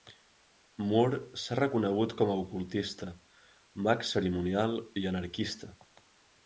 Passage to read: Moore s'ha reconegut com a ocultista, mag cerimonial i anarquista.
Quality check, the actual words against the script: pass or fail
pass